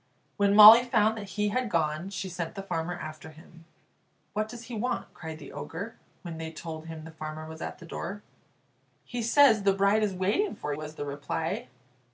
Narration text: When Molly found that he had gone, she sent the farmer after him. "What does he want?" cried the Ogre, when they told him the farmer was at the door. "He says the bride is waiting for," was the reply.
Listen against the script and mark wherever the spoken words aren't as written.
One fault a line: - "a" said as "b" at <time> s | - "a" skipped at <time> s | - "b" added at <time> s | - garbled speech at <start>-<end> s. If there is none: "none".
none